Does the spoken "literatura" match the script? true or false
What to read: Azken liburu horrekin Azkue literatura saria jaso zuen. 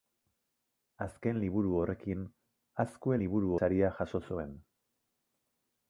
false